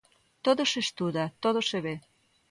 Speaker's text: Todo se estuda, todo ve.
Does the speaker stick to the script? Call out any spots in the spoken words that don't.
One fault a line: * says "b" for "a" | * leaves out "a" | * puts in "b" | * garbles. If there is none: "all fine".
* puts in "se"